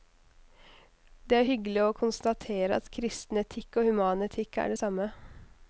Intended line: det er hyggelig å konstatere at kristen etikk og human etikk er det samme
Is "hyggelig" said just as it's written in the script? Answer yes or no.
yes